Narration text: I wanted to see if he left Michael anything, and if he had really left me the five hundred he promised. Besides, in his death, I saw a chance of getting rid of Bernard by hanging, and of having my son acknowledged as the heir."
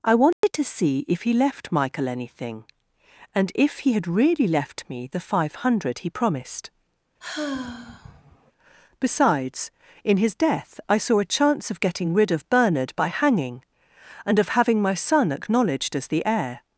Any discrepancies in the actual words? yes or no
no